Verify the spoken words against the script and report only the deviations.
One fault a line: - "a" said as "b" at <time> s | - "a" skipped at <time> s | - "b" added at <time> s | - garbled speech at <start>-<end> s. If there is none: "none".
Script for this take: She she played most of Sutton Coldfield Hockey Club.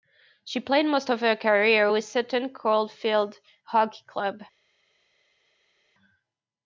- "she" skipped at 0.6 s
- "her career with" added at 1.2 s